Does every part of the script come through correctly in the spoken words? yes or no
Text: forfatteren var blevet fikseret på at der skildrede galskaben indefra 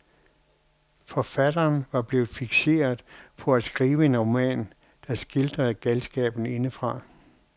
no